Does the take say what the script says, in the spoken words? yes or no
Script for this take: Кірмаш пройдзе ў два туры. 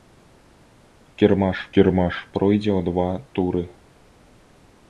no